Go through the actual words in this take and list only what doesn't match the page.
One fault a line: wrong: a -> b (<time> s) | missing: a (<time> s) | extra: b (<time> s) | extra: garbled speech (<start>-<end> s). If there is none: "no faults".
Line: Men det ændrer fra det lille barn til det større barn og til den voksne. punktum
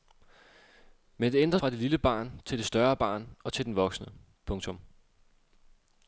no faults